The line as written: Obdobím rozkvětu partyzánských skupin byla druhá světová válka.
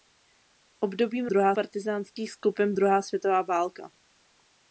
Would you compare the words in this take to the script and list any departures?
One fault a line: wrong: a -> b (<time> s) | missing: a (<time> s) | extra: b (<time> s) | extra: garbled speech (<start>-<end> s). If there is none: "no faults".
wrong: rozkvětu -> druhá (1.3 s)
missing: byla (2.7 s)